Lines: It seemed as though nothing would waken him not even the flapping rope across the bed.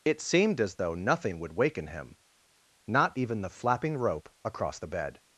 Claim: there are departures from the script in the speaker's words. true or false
false